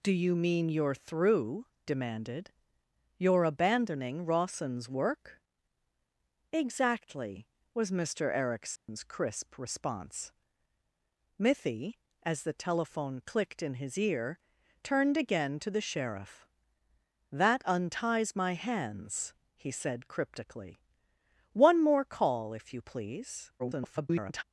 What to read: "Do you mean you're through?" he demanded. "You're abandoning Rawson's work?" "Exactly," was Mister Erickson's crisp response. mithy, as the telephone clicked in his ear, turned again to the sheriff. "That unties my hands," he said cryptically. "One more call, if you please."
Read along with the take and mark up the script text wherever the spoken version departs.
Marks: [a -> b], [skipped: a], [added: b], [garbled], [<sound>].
"Do you mean you're through?" [skipped: he] demanded. "You're abandoning Rawson's work?" "Exactly," was Mister Erickson's [dropout] crisp response. mithy, as the telephone clicked in his ear, turned again to the sheriff. "That unties my hands," he said cryptically. "One more call, if you please." [garbled]